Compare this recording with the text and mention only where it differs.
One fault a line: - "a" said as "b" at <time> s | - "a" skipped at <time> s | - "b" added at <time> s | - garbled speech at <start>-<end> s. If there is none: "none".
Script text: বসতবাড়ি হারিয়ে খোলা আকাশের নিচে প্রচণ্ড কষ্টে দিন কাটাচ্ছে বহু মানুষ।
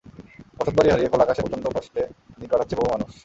- "নিচে" skipped at 1.4 s